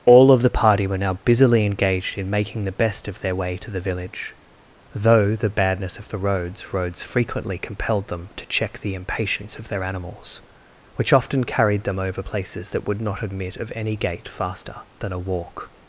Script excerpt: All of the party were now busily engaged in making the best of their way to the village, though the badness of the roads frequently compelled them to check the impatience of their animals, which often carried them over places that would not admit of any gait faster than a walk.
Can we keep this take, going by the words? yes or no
no